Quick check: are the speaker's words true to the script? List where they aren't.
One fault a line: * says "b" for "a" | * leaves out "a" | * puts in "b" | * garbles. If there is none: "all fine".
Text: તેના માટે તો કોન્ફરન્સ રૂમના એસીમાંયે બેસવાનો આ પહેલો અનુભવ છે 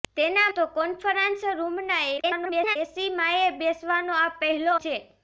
* leaves out "માટે"
* garbles
* leaves out "અનુભવ"